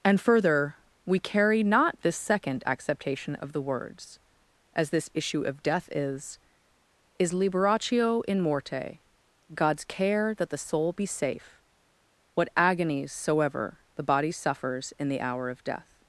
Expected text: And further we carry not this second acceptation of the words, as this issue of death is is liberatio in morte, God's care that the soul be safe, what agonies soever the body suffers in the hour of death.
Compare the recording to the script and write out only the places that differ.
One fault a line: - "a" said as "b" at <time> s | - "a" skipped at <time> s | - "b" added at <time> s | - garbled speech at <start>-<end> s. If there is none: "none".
none